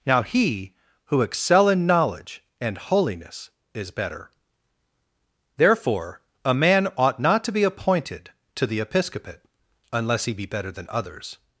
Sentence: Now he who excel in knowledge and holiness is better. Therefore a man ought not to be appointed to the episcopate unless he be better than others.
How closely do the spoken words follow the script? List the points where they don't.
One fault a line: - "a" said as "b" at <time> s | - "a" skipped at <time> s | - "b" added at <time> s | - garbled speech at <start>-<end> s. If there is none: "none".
none